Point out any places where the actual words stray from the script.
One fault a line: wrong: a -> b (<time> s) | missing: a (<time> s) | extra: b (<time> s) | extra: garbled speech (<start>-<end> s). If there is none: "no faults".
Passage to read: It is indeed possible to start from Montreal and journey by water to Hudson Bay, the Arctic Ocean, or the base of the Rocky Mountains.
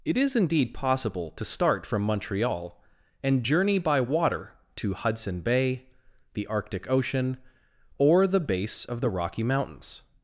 no faults